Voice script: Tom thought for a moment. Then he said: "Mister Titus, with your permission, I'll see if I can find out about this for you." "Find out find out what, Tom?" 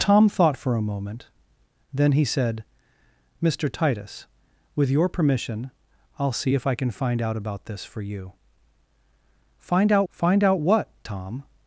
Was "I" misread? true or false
false